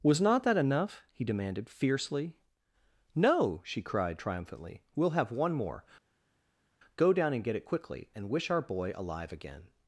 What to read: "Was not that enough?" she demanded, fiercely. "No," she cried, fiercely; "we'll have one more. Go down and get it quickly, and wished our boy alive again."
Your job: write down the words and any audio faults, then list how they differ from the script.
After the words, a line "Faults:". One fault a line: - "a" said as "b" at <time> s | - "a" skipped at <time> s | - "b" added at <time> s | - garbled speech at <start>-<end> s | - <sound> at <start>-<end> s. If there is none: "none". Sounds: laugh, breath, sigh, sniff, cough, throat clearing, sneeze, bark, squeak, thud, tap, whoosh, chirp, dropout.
"Was not that enough?" he demanded, fiercely. "No," she cried, triumphantly; "we'll have one more. Go down and get it quickly, and wish our boy alive again."
Faults:
- "she" said as "he" at 1.1 s
- "fiercely" said as "triumphantly" at 4.2 s
- "wished" said as "wish" at 8.3 s